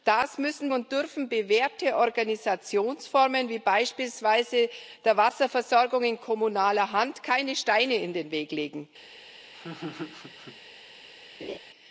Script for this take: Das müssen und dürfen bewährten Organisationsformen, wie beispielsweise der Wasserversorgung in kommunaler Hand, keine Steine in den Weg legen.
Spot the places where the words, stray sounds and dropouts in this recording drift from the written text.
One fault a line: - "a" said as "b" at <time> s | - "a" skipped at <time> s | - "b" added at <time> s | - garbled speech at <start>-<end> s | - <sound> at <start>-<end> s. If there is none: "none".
- laugh at 9.5-10.6 s
- laugh at 11.4-11.6 s